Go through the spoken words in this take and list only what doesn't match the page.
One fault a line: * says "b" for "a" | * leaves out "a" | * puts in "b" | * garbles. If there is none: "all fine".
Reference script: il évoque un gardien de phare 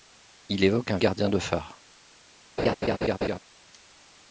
all fine